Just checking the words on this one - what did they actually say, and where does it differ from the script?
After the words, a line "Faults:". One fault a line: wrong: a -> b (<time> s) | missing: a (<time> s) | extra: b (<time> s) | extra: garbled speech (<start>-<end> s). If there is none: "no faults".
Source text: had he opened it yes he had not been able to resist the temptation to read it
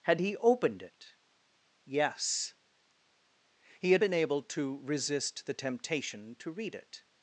had he opened it yes he had been able to resist the temptation to read it
Faults:
missing: not (4.0 s)